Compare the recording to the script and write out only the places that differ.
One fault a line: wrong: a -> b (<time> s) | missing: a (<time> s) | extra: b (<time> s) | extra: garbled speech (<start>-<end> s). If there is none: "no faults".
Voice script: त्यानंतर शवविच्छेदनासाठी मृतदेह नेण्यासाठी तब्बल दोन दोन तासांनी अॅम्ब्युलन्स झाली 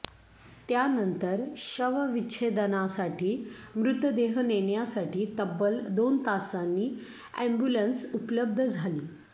missing: दोन (6.2 s)
extra: उपलब्ध (8.1 s)